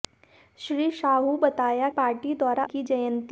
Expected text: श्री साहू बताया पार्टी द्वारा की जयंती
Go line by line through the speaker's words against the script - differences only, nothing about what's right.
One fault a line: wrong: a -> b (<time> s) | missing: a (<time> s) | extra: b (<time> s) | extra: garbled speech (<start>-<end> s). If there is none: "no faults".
no faults